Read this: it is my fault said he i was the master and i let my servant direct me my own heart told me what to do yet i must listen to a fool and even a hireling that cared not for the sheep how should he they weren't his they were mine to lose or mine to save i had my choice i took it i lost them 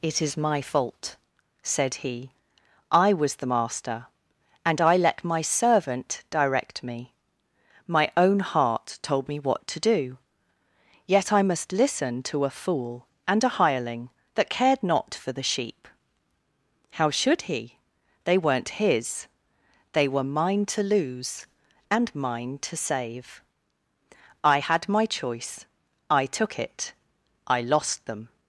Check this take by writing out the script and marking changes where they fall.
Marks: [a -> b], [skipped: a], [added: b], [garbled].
it is my fault said he i was the master and i let my servant direct me my own heart told me what to do yet i must listen to a fool and [skipped: even] a hireling that cared not for the sheep how should he they weren't his they were mine to lose [or -> and] mine to save i had my choice i took it i lost them